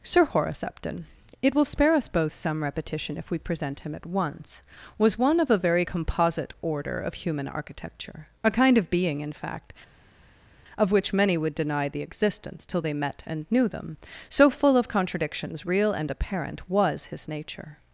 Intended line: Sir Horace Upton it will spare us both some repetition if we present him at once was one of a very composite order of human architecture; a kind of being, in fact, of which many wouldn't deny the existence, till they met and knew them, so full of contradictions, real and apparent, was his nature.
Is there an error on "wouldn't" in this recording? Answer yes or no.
yes